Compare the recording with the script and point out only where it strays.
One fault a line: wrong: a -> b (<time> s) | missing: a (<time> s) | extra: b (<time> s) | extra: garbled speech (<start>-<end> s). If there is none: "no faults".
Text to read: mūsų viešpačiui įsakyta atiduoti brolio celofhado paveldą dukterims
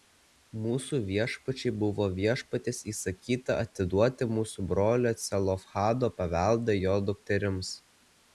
extra: buvo viešpaties (1.8 s)
extra: mūsų (4.4 s)
extra: jo (6.8 s)